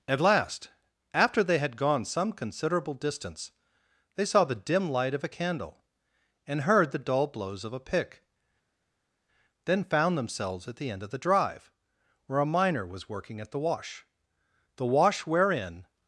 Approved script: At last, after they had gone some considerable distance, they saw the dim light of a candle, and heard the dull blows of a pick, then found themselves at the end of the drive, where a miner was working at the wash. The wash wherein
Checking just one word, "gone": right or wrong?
right